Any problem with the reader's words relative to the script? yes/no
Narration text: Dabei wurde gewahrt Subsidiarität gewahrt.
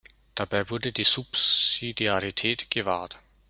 yes